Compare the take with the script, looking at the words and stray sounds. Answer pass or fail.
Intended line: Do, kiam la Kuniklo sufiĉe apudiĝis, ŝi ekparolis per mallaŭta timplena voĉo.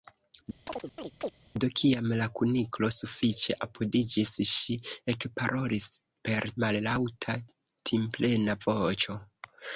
fail